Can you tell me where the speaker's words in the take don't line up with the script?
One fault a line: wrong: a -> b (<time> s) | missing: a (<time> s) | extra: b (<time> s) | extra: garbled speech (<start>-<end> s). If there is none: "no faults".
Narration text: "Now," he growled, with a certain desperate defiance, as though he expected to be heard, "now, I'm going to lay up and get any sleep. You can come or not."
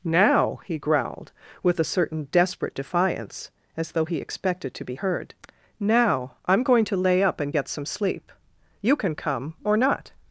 wrong: any -> some (7.7 s)